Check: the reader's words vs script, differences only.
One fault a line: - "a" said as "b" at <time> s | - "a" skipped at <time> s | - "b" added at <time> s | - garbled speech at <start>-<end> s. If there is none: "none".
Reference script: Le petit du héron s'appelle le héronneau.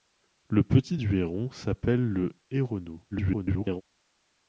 - garbled speech at 3.1-3.8 s